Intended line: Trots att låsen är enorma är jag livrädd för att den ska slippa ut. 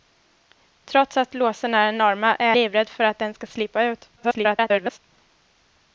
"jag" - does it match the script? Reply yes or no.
no